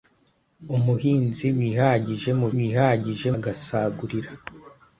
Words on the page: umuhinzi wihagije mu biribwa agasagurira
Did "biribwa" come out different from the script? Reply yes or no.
yes